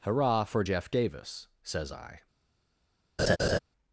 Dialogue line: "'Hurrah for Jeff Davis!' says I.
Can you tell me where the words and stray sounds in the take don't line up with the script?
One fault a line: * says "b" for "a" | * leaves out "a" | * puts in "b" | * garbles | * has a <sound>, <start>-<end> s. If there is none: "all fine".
* has a laugh, 3.2-3.6 s